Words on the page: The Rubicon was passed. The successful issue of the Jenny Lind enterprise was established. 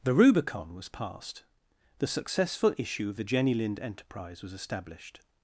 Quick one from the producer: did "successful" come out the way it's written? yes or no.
yes